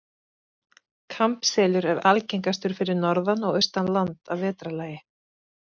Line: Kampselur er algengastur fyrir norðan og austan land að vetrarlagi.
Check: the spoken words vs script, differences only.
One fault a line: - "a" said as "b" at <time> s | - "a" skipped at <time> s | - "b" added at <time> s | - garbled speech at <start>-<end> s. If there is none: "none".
none